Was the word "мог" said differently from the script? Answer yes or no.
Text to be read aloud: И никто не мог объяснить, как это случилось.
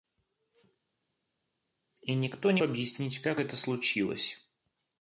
yes